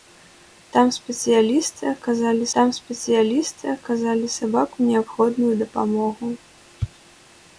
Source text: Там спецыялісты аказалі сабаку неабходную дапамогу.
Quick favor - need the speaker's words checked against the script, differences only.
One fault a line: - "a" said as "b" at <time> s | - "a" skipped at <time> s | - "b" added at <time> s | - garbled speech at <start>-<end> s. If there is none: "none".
- "там спецыялісты аказалі" added at 2.6 s